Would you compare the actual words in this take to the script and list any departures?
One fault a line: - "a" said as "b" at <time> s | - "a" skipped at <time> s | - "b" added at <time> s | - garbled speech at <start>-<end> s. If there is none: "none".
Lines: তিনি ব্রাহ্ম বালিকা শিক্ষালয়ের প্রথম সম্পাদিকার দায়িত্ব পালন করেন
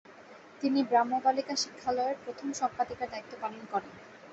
none